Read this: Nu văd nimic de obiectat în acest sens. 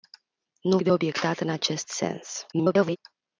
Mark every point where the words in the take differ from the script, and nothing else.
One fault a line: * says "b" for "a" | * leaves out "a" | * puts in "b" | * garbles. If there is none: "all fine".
* leaves out "văd nimic"
* garbles